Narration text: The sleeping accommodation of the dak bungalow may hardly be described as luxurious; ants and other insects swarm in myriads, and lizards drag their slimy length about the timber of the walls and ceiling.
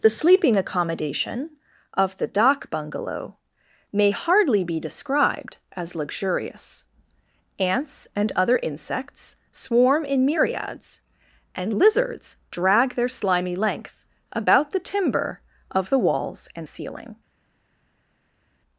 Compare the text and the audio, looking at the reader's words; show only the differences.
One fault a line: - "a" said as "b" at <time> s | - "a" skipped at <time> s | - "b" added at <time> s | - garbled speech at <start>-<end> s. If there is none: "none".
none